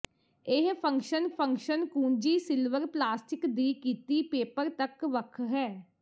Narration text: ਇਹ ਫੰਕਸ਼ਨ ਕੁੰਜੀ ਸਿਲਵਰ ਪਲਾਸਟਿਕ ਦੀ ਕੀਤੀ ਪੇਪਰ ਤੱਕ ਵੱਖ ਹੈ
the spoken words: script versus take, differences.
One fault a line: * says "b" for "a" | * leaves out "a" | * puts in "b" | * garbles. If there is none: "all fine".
* puts in "ਫੰਕਸ਼ਨ"